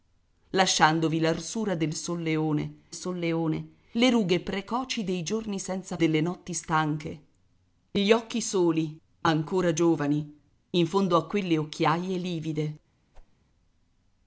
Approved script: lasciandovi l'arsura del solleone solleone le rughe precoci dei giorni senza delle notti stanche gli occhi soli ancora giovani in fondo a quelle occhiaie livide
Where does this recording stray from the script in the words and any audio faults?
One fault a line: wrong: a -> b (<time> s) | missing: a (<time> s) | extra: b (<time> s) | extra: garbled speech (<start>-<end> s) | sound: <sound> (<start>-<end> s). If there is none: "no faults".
sound: whoosh (13.1-13.4 s)